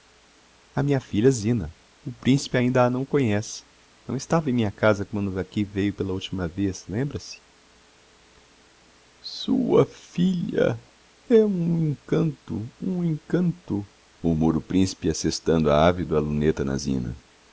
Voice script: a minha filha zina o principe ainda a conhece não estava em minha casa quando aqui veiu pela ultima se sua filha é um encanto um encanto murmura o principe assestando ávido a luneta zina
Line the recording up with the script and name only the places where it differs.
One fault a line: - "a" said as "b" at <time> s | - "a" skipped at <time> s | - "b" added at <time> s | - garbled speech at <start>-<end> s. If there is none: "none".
- "não" added at 2.9 s
- "vez lembra" added at 6.5 s
- "na" added at 16.6 s